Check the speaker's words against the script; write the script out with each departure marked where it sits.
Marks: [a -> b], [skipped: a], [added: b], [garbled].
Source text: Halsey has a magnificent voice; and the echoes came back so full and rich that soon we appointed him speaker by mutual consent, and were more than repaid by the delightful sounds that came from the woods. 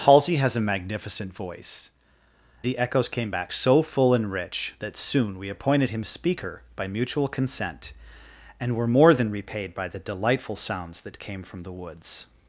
Halsey has a magnificent voice; [skipped: and] the echoes came back so full and rich that soon we appointed him speaker by mutual consent, and were more than repaid by the delightful sounds that came from the woods.